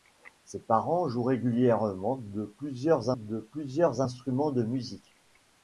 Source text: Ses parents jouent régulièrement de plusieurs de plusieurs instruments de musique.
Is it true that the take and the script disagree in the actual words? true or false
false